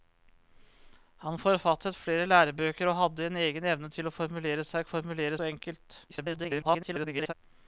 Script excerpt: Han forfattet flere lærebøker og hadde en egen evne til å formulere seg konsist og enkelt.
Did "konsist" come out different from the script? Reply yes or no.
yes